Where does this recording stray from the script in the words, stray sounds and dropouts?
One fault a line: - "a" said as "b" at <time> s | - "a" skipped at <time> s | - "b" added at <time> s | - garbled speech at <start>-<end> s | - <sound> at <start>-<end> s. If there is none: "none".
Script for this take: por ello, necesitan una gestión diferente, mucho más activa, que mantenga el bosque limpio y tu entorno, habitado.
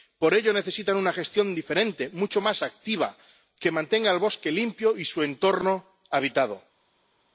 - "tu" said as "su" at 5.0 s